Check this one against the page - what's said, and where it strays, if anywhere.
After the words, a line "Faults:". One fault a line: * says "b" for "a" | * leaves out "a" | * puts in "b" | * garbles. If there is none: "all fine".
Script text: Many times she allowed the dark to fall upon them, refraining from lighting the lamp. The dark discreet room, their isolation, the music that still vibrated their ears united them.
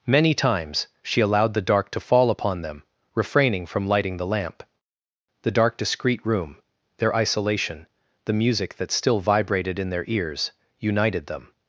Many times she allowed the dark to fall upon them, refraining from lighting the lamp. The dark discreet room, their isolation, the music that still vibrated in their ears united them.
Faults:
* puts in "in"